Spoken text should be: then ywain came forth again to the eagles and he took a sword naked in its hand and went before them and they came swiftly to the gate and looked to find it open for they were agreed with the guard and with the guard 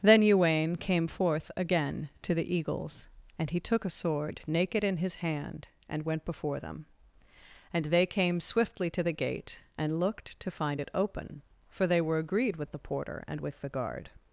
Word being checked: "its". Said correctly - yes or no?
no